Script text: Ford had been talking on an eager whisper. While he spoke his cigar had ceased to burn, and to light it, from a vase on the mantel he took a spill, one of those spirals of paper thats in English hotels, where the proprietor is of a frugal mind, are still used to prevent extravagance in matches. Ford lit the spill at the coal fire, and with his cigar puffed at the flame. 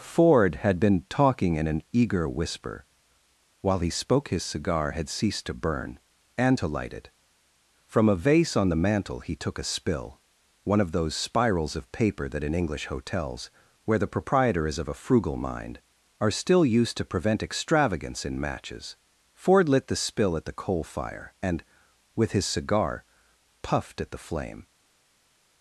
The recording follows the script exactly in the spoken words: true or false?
false